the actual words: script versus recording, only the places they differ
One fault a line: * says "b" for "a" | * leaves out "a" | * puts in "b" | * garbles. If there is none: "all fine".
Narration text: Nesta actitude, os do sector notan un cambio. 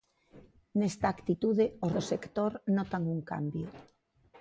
all fine